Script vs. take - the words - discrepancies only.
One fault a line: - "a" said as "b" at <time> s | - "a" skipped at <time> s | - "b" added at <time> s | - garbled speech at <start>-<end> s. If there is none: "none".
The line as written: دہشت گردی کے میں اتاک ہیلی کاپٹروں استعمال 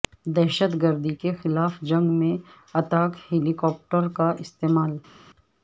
- "خلاف جنگ" added at 1.4 s
- "کا" added at 4.2 s